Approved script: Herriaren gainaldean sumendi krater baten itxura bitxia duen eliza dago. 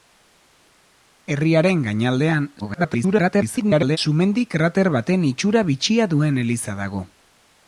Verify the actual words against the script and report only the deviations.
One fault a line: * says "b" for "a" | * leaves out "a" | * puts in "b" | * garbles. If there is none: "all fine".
* garbles